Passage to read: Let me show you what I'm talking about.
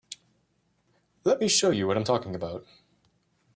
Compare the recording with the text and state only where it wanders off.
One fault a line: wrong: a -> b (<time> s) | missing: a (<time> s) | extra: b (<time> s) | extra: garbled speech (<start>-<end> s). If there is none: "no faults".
no faults